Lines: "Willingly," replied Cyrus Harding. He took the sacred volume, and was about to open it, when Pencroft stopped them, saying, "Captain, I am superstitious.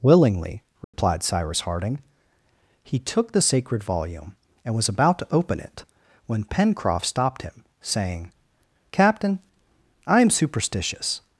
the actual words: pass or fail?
fail